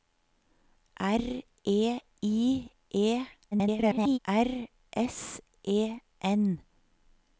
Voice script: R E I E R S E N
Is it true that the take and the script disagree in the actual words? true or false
true